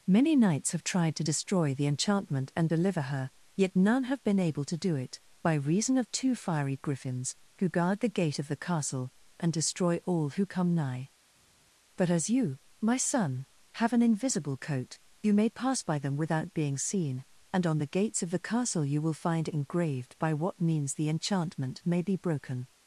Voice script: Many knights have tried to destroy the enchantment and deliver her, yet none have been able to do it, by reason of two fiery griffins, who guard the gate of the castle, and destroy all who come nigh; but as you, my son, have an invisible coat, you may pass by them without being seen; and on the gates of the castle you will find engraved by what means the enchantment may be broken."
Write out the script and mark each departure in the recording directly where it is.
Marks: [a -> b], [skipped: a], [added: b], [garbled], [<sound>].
Many knights have tried to destroy the enchantment and deliver her, yet none have been able to do it, by reason of two fiery griffins, who guard the gate of the castle, and destroy all who come nigh; but as you, my son, have an invisible coat, you may pass by them without being seen; and on the gates of the castle you will find engraved by what means the enchantment may be broken."